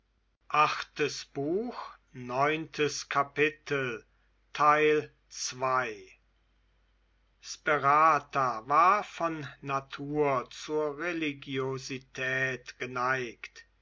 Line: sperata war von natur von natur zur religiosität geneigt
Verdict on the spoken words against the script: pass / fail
fail